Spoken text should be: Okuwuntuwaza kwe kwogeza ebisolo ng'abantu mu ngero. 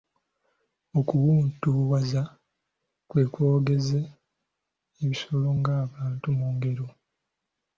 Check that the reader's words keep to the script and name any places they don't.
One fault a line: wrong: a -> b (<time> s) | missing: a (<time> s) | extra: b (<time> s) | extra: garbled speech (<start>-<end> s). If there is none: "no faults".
no faults